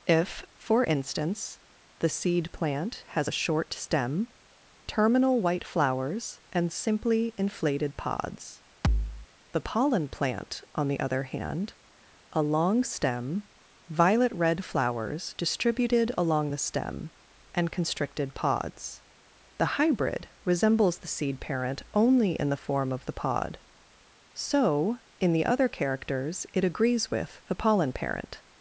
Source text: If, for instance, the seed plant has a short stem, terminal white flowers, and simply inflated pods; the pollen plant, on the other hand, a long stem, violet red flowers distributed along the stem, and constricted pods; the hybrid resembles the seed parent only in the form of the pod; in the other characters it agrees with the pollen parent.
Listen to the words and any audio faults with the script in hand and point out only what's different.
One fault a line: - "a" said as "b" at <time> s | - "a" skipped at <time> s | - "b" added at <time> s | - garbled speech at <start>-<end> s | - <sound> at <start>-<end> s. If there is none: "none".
- thud at 8.8-9.3 s
- "so" added at 24.3 s